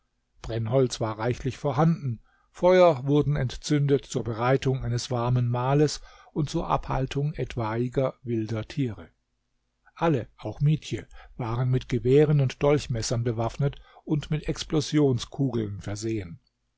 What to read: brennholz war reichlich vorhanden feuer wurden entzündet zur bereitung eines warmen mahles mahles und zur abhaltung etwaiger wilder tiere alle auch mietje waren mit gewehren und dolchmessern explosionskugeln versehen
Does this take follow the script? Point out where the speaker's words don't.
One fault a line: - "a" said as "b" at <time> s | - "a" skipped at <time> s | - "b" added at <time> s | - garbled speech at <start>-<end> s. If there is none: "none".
- "mahles" skipped at 6.0 s
- "bewaffnet und mit" added at 13.2 s